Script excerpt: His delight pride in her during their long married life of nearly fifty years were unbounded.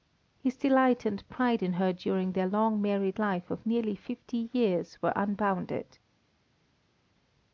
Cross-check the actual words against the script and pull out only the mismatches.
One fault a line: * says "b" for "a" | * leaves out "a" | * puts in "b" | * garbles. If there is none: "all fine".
* puts in "and"